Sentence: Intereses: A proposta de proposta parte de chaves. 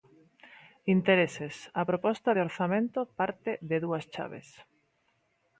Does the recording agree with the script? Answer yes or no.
no